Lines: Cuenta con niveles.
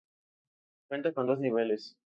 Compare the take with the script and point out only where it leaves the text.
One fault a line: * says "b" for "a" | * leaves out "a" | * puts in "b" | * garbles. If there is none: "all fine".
* puts in "dos"